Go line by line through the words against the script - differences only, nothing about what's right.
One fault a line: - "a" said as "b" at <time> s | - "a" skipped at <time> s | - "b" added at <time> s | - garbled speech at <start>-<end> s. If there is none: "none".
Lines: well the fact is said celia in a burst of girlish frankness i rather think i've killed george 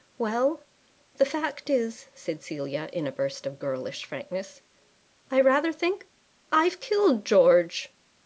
none